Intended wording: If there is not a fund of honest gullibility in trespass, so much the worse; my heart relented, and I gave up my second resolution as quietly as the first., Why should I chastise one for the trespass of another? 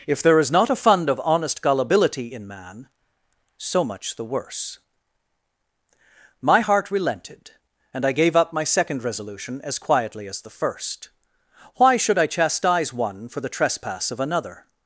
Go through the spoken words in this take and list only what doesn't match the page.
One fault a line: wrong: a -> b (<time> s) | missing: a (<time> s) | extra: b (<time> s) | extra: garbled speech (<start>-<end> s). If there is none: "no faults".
wrong: trespass -> man (2.5 s)